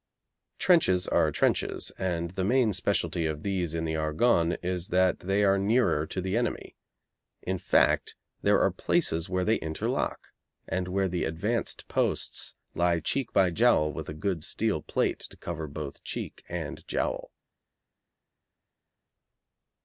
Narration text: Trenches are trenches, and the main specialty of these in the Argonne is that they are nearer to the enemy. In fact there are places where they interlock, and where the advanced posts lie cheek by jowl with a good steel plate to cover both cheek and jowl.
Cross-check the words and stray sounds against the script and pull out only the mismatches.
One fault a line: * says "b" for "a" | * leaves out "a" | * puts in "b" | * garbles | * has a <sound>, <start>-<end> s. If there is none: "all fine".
all fine